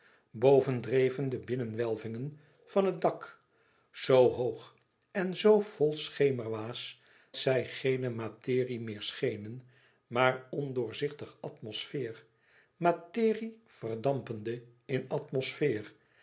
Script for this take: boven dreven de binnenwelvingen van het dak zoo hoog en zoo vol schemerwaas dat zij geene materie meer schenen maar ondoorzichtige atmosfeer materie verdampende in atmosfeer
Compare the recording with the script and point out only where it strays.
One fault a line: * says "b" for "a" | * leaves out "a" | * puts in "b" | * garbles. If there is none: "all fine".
* leaves out "dat"